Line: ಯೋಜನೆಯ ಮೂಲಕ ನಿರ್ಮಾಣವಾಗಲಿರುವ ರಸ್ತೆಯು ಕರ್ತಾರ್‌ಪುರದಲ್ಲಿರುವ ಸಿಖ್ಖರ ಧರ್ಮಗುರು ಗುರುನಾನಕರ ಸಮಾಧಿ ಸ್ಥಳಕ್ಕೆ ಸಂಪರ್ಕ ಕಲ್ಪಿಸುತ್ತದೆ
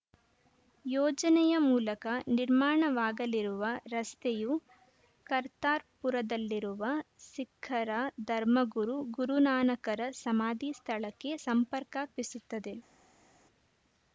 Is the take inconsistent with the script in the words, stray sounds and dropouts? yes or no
no